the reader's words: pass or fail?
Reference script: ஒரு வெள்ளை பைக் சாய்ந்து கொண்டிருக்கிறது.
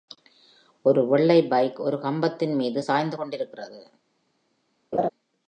fail